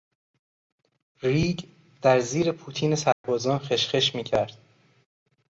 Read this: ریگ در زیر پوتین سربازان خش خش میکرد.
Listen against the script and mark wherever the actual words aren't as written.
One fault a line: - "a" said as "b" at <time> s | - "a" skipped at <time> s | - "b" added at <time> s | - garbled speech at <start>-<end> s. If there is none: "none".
none